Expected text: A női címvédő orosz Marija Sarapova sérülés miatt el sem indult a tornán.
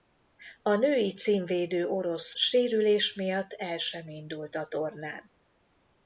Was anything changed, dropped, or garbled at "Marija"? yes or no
yes